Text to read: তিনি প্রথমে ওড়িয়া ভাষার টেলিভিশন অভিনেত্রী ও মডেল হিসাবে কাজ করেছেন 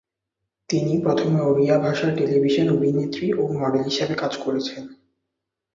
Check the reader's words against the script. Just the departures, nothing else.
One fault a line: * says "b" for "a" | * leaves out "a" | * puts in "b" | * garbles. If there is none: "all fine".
all fine